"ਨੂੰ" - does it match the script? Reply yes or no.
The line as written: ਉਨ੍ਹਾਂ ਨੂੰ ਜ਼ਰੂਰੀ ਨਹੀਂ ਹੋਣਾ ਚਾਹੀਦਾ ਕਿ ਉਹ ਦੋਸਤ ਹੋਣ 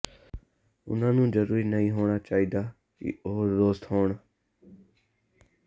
yes